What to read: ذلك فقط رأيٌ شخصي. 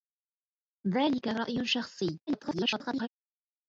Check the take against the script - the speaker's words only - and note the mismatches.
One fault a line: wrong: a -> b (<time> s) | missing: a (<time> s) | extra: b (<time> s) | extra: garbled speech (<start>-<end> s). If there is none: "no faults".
missing: فقط (1.3 s)
extra: garbled speech (2.3-3.1 s)